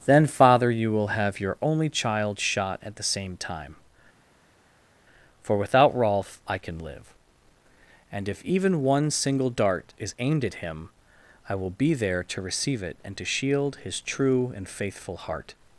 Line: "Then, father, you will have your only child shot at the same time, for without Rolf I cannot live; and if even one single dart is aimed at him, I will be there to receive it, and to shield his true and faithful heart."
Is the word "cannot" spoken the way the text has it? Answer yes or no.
no